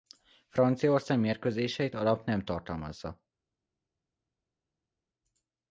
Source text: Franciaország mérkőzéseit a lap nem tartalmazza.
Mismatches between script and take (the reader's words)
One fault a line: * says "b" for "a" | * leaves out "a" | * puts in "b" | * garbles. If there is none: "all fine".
all fine